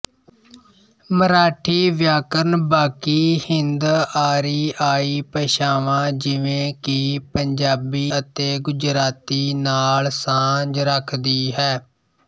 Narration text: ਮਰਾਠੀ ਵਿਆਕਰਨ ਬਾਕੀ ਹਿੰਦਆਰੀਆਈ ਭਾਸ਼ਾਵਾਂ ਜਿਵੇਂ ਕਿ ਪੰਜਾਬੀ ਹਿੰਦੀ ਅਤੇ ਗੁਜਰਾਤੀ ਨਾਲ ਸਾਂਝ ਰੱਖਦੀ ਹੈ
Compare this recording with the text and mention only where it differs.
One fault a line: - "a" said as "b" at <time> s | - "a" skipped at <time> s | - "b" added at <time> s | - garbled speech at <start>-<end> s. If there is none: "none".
- "ਹਿੰਦੀ" skipped at 8.1 s